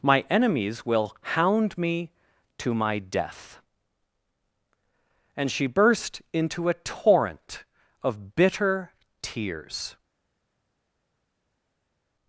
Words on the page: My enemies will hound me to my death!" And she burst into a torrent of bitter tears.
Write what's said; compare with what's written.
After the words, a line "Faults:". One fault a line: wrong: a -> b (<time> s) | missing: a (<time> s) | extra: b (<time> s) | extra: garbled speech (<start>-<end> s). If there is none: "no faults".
My enemies will hound me to my death!" And she burst into a torrent of bitter tears.
Faults:
no faults